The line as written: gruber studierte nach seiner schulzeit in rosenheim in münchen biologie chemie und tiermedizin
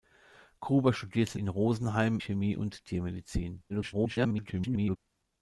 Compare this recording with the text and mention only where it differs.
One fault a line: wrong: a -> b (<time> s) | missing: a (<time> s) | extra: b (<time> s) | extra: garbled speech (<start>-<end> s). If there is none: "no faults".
missing: nach seiner schulzeit (1.4 s)
missing: in münchen biologie (2.2 s)
extra: garbled speech (3.7-5.0 s)